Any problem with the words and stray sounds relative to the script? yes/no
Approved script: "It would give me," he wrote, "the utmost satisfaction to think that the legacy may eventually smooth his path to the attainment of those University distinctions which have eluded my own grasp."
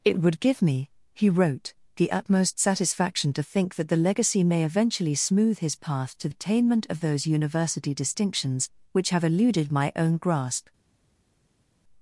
yes